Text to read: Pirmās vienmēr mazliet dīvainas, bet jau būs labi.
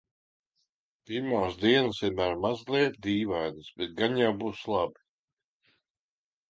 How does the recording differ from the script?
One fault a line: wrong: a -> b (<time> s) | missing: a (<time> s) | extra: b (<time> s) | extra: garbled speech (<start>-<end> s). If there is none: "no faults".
extra: dienas (1.6 s)
extra: gan (4.0 s)